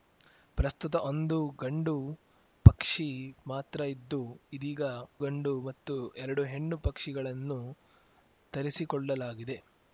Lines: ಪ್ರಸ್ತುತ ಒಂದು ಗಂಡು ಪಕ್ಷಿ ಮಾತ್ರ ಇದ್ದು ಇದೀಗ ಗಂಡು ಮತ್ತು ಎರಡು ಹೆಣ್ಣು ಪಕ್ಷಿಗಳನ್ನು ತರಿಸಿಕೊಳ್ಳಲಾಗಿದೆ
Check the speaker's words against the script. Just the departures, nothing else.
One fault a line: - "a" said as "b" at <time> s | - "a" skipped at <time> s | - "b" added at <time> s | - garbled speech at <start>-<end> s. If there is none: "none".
none